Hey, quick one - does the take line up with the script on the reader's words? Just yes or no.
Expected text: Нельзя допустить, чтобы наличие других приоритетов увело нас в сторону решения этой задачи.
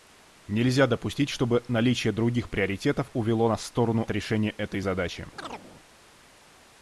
yes